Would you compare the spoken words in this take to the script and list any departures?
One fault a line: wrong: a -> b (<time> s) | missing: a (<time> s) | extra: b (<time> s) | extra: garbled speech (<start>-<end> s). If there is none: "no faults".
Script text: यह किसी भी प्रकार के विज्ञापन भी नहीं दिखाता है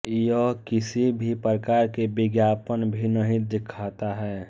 no faults